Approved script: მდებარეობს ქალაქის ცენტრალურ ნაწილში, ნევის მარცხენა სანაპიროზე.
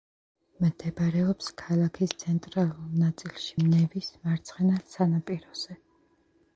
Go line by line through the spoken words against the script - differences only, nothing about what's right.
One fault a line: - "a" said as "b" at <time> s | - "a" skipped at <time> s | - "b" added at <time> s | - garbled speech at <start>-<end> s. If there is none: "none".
none